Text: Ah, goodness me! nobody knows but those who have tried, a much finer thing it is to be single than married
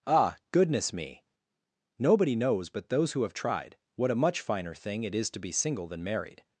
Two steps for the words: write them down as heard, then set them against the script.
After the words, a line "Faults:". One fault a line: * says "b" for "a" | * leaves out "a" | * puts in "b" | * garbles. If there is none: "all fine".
Ah, goodness me! nobody knows but those who have tried, what a much finer thing it is to be single than married
Faults:
* puts in "what"